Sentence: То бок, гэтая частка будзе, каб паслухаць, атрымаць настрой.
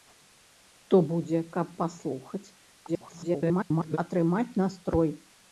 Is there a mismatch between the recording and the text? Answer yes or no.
yes